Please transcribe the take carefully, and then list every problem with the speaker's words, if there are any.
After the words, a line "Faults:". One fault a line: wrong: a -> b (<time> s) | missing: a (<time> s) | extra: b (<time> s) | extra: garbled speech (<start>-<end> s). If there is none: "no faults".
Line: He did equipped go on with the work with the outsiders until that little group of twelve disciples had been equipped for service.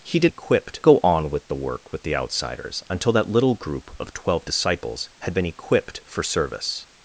He did equipped go on with the work with the outsiders until that little group of twelve disciples had been equipped for service.
Faults:
no faults